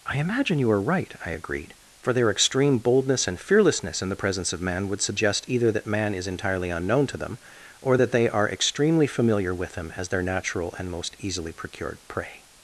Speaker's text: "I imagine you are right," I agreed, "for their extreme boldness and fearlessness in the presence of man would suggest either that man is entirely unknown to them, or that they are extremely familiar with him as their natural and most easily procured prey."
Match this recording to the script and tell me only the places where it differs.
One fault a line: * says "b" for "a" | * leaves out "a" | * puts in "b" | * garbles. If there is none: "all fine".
all fine